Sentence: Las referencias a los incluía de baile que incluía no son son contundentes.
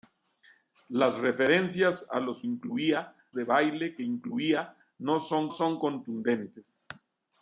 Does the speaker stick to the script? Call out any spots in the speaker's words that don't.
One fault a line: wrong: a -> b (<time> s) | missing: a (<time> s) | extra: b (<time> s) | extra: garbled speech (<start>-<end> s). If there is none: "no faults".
no faults